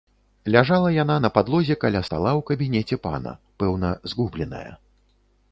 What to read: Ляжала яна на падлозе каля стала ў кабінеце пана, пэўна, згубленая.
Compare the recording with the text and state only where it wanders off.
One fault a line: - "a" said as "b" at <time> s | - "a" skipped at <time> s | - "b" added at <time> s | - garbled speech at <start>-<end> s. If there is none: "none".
none